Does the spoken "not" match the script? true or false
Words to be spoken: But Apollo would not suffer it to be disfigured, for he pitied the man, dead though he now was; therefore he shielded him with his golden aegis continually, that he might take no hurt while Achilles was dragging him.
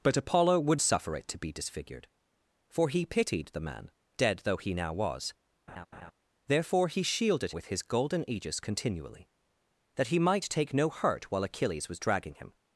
false